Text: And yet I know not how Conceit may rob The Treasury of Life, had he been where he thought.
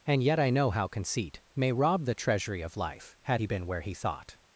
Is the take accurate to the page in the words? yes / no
no